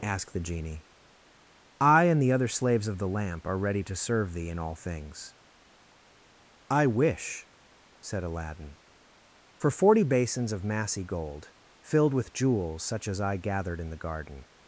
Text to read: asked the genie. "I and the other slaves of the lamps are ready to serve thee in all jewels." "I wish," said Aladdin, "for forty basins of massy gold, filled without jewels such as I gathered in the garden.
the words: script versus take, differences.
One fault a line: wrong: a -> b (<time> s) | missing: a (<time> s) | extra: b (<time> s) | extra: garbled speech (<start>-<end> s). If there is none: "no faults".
wrong: lamps -> lamp (3.1 s)
wrong: jewels -> things (4.8 s)
wrong: without -> with (12.1 s)